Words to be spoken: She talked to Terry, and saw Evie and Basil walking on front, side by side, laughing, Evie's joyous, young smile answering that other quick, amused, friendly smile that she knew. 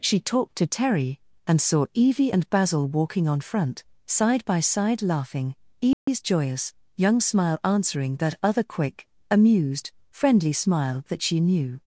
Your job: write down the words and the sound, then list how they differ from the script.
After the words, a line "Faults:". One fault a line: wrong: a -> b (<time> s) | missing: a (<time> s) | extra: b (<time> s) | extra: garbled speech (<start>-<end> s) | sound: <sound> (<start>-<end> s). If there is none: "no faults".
She talked to Terry, and saw Evie and Basil walking on front, side by side, laughing, Evie's joyous, young smile answering that other quick, amused, friendly smile that she knew.
Faults:
sound: dropout (5.9-6.1 s)